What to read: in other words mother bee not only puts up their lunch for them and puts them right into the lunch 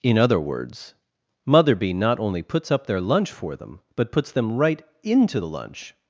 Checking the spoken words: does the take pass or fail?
fail